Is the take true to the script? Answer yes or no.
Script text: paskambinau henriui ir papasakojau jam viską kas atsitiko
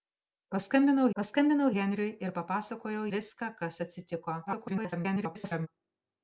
no